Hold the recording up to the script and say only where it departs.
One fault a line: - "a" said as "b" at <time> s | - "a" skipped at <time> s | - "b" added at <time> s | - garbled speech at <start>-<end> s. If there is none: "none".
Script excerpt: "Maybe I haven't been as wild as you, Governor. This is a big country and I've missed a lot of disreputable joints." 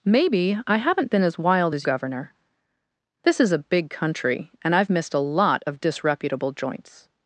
- "you" skipped at 1.9 s